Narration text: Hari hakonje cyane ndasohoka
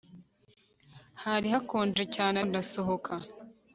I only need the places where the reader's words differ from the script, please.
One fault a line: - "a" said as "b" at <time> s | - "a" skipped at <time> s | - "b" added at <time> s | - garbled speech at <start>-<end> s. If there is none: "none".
none